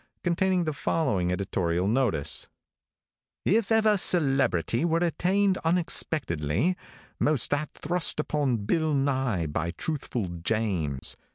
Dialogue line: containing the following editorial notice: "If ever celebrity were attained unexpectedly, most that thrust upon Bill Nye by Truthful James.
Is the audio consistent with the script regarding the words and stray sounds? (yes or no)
no